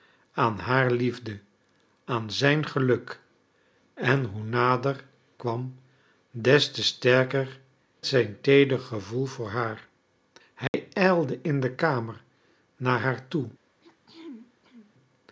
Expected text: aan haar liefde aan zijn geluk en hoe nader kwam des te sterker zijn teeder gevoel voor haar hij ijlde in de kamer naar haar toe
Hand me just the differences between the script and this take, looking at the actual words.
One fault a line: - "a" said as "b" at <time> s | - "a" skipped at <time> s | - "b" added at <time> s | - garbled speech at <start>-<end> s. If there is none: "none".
none